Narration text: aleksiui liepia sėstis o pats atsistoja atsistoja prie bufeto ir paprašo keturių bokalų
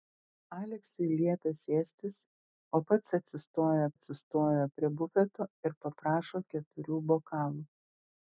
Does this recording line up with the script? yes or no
yes